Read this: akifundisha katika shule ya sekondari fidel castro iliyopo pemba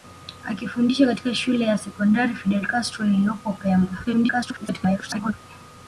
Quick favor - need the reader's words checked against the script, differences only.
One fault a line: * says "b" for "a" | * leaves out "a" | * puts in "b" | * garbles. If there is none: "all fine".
* garbles